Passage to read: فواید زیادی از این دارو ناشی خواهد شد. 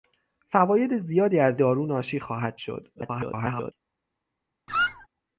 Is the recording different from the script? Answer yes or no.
yes